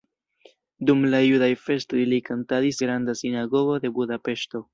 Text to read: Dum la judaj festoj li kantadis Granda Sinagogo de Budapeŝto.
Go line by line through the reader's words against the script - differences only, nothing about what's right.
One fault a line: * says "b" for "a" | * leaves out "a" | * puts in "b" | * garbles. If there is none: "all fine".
all fine